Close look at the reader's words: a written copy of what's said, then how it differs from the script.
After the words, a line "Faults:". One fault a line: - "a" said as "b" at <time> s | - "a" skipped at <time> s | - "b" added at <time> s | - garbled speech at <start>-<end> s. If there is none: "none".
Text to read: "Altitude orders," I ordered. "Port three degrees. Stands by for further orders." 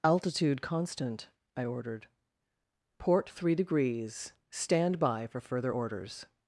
"Altitude constant," I ordered. "Port three degrees. Stand by for further orders."
Faults:
- "orders" said as "constant" at 0.6 s
- "Stands" said as "Stand" at 4.5 s